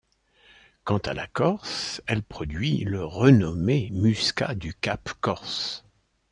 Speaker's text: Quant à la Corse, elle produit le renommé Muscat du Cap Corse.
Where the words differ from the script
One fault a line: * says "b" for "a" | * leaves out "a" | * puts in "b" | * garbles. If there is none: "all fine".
all fine